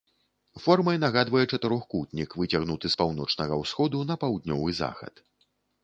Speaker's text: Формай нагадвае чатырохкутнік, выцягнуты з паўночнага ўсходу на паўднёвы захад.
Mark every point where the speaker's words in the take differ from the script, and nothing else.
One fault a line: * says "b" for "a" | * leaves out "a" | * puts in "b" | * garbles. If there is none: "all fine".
all fine